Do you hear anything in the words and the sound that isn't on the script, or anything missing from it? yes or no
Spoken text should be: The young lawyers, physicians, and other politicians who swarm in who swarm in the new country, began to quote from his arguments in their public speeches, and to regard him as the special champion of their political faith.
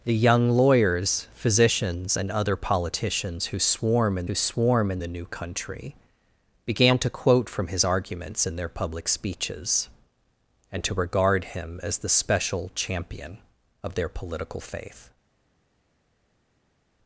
no